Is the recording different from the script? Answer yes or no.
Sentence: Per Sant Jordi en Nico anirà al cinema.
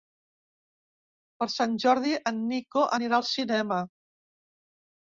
no